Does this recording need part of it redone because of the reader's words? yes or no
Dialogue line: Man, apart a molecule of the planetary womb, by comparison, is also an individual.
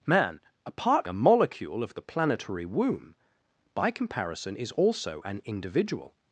no